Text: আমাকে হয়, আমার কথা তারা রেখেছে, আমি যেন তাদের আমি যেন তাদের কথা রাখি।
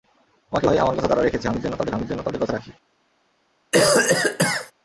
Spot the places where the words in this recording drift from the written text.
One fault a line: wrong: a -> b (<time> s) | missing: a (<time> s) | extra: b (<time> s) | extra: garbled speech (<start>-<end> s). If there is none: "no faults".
no faults